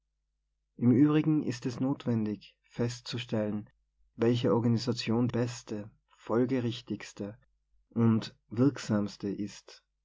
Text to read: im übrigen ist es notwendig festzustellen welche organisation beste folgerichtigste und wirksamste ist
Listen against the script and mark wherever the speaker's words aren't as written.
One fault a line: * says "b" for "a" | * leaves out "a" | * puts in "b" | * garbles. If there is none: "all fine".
all fine